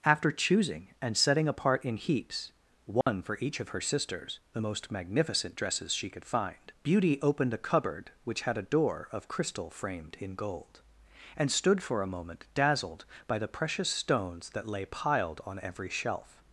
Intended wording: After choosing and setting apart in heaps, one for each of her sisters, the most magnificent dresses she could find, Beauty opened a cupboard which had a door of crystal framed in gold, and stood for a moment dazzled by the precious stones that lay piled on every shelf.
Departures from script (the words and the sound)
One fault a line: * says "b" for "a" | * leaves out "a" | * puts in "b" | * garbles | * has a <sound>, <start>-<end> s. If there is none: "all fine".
* has a dropout, 3.0-3.1 s